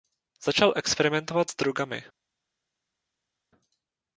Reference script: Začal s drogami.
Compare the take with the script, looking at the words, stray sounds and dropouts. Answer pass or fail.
fail